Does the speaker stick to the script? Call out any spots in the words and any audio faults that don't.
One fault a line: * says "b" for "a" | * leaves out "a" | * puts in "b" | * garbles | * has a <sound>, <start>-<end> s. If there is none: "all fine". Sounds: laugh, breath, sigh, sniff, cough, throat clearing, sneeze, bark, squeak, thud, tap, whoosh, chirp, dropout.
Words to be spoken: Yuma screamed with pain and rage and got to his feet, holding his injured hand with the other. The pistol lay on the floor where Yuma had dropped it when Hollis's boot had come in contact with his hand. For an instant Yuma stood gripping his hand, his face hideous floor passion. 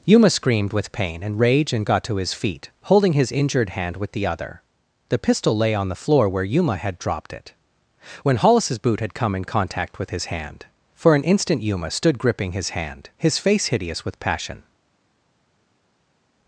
* says "with" for "floor"